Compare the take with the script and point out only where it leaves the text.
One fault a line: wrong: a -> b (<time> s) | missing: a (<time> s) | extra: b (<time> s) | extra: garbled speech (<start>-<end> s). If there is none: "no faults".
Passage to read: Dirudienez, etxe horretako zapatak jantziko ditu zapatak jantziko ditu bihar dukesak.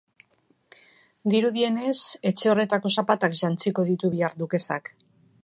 missing: zapatak jantziko ditu (4.1 s)